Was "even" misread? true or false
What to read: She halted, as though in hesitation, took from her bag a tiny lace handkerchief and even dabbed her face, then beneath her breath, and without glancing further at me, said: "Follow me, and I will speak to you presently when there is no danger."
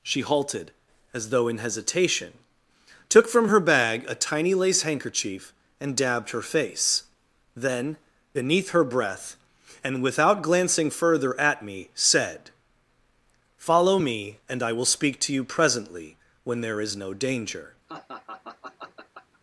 true